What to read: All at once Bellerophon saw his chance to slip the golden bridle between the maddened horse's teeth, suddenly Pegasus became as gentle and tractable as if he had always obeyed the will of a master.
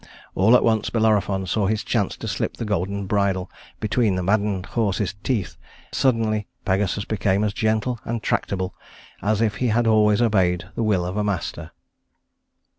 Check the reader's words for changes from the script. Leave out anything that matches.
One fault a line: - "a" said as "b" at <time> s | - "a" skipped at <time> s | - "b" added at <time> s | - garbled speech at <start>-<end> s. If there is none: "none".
none